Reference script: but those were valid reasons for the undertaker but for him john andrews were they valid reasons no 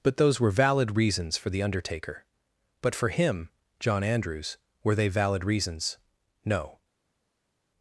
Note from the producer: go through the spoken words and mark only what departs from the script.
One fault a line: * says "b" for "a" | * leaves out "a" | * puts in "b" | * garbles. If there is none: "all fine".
all fine